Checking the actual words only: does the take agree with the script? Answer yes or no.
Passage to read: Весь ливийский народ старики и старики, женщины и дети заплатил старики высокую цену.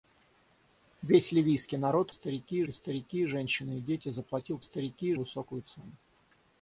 yes